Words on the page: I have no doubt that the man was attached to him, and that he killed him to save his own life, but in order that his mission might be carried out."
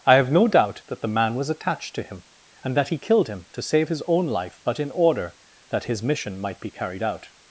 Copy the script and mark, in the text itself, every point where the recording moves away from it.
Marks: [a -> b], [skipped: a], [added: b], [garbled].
I have no doubt that the man was attached to him, and that he killed him to save his own life, but in order that his mission might be carried out."